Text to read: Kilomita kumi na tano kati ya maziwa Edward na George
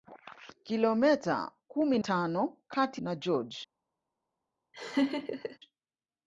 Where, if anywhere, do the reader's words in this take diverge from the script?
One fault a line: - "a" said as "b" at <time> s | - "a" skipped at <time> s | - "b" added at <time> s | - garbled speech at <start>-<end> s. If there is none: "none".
- "na" skipped at 2.0 s
- "ya maziwa Edward" skipped at 3.0 s